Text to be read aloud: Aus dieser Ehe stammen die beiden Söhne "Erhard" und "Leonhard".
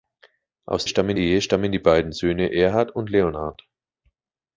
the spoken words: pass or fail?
fail